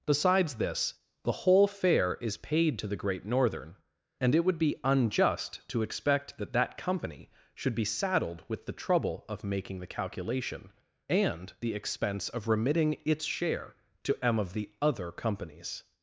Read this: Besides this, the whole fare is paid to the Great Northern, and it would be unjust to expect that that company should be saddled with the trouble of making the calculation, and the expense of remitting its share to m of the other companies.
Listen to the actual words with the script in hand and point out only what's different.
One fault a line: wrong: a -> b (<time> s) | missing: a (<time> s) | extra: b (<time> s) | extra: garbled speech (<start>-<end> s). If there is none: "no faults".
no faults